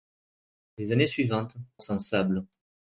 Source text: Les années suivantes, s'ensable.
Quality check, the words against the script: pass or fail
pass